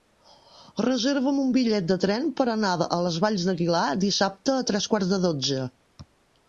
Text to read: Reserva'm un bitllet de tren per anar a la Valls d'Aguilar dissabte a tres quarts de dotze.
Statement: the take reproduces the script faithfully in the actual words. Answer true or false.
false